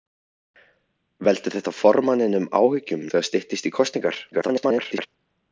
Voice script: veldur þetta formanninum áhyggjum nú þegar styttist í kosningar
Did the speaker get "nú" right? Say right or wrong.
wrong